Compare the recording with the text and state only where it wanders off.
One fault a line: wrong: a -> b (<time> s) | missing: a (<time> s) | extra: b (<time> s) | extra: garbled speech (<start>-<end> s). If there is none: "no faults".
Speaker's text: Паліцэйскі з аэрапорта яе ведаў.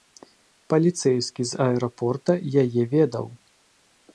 no faults